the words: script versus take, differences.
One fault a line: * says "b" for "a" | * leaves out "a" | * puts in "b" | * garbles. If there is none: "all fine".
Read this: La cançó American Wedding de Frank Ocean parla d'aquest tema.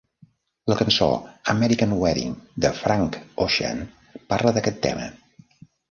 all fine